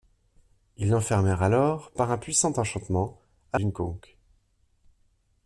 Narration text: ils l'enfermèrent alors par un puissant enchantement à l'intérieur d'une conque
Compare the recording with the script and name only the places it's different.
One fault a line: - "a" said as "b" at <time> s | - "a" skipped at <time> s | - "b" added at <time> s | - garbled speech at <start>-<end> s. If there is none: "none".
- "l'intérieur" skipped at 3.6 s